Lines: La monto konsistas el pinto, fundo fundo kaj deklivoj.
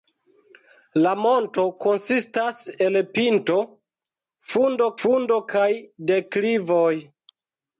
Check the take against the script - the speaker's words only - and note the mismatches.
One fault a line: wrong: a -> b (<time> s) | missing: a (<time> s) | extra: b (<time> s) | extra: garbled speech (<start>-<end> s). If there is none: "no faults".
no faults